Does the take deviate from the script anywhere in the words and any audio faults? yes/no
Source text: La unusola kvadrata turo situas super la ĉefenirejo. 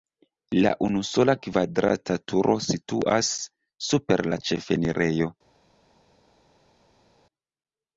no